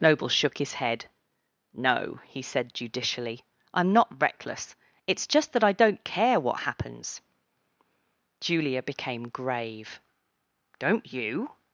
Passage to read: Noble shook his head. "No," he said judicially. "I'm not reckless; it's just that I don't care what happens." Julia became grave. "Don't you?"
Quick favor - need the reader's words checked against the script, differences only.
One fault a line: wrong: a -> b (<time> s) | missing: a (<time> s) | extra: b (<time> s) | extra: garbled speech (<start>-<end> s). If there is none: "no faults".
no faults